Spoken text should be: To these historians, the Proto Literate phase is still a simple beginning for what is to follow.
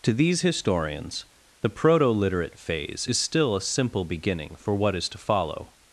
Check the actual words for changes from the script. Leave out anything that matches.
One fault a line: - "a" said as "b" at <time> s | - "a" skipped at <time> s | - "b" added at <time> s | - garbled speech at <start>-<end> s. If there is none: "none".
none